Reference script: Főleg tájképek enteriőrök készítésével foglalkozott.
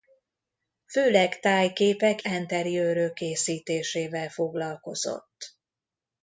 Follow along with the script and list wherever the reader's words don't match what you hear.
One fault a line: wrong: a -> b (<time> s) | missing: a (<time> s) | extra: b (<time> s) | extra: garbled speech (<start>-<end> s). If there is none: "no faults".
no faults